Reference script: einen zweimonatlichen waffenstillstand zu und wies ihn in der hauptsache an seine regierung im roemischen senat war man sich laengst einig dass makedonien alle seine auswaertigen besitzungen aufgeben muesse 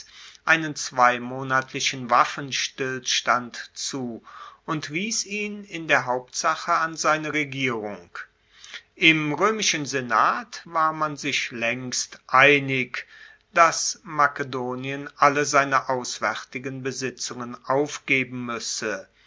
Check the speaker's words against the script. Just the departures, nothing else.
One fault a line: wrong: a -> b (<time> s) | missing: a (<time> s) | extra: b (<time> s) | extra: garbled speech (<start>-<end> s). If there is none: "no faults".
no faults